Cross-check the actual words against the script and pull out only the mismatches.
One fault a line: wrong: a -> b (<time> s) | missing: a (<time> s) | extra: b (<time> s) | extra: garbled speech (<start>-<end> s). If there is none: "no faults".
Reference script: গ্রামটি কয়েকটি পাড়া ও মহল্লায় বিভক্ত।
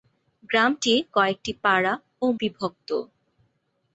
missing: মহল্লায় (2.3 s)